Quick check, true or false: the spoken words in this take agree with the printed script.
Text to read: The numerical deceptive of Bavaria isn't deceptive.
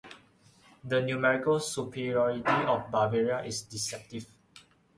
false